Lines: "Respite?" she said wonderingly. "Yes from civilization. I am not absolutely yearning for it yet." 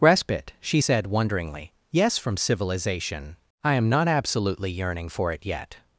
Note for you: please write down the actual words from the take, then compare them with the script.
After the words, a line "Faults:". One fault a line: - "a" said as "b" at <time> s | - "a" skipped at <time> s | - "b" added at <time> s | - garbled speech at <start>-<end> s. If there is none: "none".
"Respite?" she said wonderingly. "Yes from civilization. I am not absolutely yearning for it yet."
Faults:
none